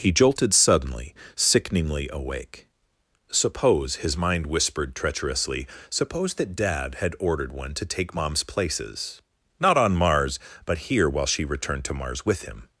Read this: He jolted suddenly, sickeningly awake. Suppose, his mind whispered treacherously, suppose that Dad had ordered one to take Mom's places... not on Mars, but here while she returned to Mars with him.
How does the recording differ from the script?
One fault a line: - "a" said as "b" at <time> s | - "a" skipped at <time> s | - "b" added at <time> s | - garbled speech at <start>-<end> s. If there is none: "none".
none